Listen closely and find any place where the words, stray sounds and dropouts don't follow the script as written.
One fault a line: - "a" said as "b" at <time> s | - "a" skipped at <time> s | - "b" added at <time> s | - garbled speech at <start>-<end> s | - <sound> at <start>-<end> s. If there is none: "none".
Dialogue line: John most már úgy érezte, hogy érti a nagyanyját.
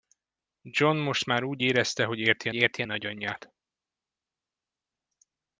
- "érti" added at 2.5 s